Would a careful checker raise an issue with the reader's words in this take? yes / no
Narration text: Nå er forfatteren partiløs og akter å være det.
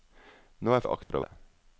yes